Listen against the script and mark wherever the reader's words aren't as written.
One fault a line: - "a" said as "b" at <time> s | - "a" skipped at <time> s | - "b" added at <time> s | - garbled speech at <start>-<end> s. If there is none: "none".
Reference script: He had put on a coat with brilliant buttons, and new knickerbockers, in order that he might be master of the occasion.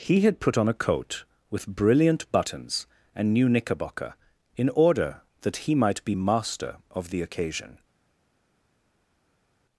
- "knickerbockers" said as "knickerbocker" at 3.5 s